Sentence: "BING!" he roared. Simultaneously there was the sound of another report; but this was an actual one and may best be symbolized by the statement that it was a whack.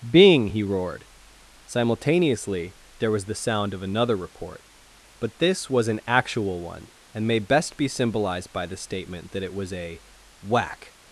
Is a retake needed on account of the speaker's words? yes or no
no